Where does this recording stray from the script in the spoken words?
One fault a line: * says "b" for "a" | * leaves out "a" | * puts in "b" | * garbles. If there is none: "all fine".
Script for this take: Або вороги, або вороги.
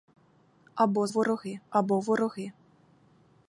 all fine